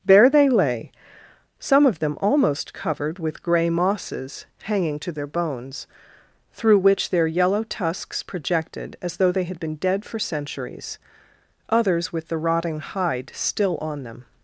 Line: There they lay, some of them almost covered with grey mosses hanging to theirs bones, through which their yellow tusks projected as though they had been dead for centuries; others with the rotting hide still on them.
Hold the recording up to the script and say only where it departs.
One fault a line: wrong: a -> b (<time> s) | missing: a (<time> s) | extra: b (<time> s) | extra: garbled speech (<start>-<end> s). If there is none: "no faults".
wrong: theirs -> their (5.1 s)